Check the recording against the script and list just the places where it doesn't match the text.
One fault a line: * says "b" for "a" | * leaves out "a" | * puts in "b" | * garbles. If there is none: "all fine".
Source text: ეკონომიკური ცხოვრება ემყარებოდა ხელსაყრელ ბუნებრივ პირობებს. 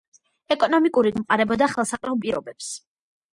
* leaves out "ცხოვრება"
* leaves out "ბუნებრივ"